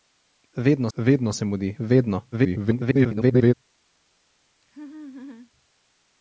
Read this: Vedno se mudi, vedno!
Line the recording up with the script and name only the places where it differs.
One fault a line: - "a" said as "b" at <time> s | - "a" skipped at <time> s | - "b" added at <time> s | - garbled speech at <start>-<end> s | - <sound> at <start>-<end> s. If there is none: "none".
- "vedno" added at 1.0 s
- garbled speech at 2.3-3.5 s
- laugh at 4.6-5.5 s